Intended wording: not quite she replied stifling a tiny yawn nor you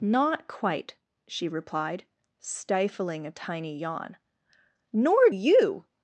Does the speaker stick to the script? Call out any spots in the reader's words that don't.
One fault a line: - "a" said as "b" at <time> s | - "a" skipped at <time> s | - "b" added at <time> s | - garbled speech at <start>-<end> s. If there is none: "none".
none